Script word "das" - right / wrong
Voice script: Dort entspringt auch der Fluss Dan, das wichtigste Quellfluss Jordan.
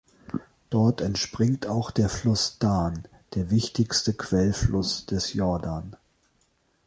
wrong